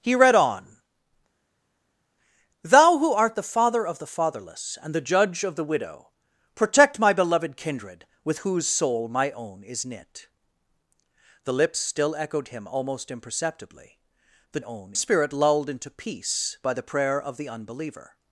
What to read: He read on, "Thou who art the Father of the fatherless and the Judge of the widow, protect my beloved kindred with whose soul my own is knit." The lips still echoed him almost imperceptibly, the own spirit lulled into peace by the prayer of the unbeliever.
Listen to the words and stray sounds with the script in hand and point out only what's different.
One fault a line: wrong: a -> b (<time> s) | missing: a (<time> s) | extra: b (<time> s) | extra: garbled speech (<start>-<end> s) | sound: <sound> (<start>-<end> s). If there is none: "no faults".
no faults